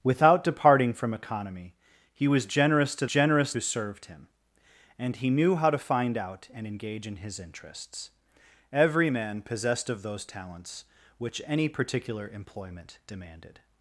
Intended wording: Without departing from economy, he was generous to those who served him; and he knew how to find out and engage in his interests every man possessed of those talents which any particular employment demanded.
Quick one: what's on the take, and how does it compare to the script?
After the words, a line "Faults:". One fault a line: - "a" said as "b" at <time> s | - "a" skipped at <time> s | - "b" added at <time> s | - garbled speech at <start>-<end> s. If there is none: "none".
Without departing from economy, he was generous to generous who served him; and he knew how to find out and engage in his interests every man possessed of those talents which any particular employment demanded.
Faults:
- "those" said as "generous" at 3.0 s